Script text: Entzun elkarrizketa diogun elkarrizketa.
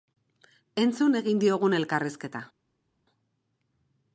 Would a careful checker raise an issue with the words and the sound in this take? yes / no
yes